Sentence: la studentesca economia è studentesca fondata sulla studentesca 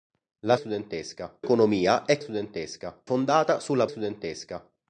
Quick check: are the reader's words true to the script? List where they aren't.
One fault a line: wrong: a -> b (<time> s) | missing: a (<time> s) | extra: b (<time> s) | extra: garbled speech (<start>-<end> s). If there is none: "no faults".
no faults